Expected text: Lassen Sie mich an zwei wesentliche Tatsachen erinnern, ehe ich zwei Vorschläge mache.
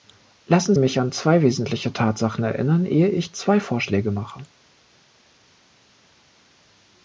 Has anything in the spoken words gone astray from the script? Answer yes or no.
yes